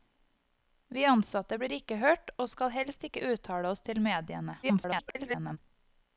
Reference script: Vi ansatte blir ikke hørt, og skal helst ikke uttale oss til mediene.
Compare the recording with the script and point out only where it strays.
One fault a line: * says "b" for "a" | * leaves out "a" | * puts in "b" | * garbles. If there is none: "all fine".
* garbles